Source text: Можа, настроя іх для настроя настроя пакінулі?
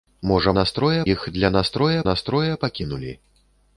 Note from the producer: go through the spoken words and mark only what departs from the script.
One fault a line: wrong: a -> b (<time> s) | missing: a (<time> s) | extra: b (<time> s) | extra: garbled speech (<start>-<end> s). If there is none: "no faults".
no faults